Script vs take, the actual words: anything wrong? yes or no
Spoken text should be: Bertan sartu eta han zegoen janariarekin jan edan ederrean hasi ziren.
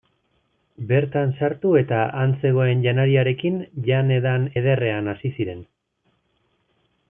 no